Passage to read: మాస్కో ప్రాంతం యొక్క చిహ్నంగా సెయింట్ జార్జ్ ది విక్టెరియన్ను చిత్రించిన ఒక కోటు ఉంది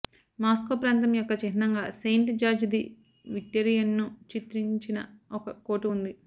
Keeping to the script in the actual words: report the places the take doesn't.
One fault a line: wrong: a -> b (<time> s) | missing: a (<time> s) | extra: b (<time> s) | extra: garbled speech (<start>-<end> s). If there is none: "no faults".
no faults